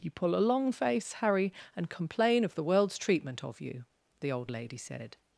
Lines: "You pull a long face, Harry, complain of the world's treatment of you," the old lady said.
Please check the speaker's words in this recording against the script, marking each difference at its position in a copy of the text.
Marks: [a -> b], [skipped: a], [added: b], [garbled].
"You pull a long face, Harry, [added: and] complain of the world's treatment of you," the old lady said.